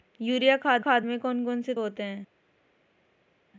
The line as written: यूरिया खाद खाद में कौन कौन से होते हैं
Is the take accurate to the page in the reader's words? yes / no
yes